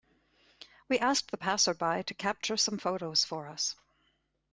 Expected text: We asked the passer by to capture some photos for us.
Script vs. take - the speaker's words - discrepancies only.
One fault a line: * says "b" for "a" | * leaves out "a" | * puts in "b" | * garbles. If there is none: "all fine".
all fine